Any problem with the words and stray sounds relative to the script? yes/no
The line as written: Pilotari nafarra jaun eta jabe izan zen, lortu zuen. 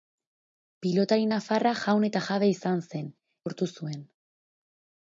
no